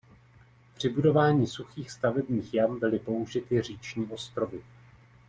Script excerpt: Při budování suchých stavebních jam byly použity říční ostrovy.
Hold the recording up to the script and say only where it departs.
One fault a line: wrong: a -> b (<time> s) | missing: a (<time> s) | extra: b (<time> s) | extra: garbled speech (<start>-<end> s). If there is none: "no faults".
no faults